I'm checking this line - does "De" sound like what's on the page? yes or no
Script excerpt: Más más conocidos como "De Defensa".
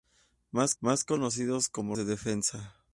yes